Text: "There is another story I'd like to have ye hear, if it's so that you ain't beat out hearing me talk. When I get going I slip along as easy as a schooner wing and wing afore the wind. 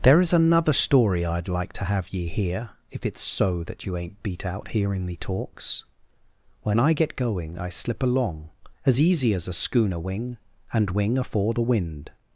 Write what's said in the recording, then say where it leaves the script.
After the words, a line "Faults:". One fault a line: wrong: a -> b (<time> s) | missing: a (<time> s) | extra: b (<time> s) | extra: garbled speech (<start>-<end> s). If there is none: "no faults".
"There is another story I'd like to have ye hear, if it's so that you ain't beat out hearing me talks. When I get going I slip along as easy as a schooner wing and wing afore the wind.
Faults:
wrong: talk -> talks (5.2 s)